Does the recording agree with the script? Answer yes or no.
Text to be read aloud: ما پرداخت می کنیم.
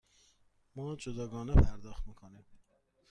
no